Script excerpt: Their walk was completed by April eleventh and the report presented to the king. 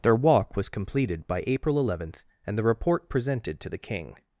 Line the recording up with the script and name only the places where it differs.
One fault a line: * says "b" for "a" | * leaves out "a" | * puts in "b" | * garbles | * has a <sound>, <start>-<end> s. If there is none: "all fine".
all fine